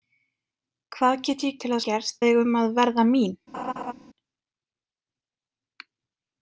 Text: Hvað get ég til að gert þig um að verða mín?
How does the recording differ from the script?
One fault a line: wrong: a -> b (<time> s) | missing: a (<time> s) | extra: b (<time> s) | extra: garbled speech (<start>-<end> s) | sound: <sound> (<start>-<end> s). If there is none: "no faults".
sound: laugh (3.5-3.9 s)